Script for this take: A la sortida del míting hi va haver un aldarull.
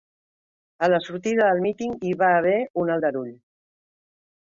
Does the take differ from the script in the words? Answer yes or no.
no